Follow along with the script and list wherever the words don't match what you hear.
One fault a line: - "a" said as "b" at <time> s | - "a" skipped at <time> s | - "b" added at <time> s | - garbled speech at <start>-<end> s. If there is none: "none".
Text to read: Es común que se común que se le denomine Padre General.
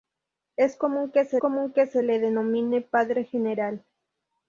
none